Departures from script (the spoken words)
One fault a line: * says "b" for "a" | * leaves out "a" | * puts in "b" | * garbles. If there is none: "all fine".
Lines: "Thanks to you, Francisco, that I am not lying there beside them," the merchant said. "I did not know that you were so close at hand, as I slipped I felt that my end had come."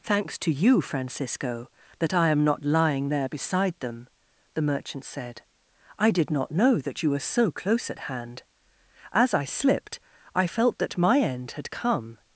all fine